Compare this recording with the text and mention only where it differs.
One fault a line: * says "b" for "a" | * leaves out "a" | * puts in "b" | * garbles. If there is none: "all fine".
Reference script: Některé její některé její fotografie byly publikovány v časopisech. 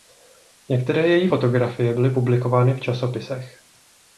* leaves out "některé její"